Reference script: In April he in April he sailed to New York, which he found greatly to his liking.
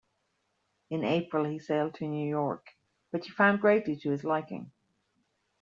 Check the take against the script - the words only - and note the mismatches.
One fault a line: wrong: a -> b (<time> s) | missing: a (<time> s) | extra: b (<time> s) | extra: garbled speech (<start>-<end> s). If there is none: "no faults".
missing: in April he (1.6 s)